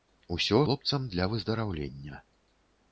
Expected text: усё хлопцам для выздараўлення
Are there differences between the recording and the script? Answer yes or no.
no